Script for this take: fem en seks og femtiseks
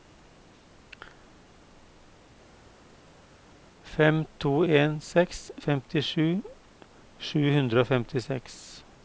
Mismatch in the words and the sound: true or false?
true